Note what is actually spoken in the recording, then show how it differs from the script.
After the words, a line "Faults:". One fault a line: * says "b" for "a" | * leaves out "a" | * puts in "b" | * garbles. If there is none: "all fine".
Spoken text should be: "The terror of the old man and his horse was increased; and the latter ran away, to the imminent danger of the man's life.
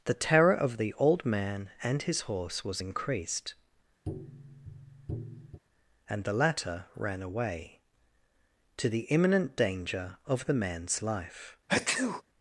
"The terror of the old man and his horse was increased; and the latter ran away, to the imminent danger of the man's life.
Faults:
all fine